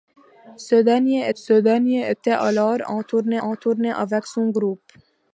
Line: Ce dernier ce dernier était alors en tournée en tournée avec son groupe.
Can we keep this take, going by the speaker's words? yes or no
yes